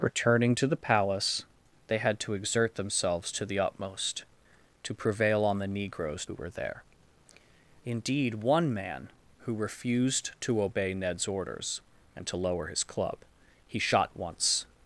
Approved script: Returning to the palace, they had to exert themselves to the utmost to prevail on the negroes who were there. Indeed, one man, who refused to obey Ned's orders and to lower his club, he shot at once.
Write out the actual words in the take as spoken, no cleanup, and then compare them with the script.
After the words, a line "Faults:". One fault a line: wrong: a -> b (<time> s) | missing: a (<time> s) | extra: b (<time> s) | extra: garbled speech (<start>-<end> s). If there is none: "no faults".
Returning to the palace, they had to exert themselves to the utmost to prevail on the negroes who were there. Indeed, one man, who refused to obey Ned's orders and to lower his club, he shot at once.
Faults:
no faults